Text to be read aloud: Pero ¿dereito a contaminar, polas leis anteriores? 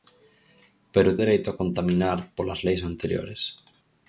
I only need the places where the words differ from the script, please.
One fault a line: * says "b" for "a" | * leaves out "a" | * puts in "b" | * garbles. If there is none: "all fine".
all fine